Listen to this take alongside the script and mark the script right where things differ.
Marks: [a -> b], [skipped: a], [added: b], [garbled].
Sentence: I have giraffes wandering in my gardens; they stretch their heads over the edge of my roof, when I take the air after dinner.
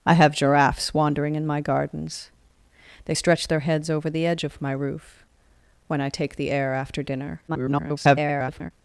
I have giraffes wandering in my gardens; they stretch their heads over the edge of my roof, when I take the air after dinner. [garbled]